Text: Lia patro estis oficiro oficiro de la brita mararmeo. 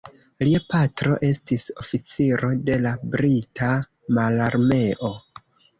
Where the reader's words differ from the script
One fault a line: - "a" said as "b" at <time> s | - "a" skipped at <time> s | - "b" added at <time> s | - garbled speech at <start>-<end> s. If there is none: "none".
- "oficiro" skipped at 2.5 s